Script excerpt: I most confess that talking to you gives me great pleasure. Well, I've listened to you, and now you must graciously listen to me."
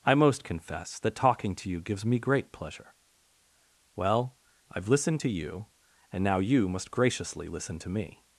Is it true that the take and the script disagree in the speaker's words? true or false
false